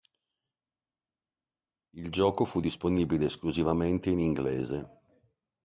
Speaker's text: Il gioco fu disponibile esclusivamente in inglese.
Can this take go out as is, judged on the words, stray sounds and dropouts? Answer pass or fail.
pass